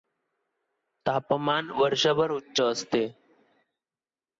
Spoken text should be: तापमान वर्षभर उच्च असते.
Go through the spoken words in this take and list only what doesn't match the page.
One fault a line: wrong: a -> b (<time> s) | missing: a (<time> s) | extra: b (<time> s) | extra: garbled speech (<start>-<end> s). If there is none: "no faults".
no faults